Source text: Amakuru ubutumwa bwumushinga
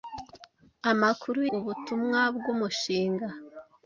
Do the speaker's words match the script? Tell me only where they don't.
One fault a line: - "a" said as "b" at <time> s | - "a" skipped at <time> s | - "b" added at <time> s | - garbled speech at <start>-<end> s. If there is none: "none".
none